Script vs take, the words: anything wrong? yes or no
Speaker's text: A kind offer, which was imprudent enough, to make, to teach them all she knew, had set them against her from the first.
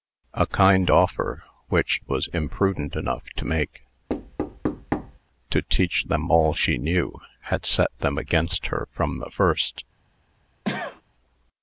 no